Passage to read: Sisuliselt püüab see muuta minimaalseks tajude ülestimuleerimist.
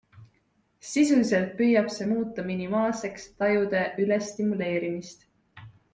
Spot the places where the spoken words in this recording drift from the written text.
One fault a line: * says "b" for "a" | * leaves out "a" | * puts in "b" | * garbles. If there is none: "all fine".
all fine